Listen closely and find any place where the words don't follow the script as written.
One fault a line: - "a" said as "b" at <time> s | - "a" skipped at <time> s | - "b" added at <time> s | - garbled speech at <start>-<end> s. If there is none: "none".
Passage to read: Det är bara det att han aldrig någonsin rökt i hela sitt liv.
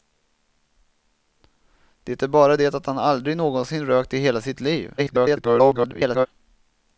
- garbled speech at 5.0-6.3 s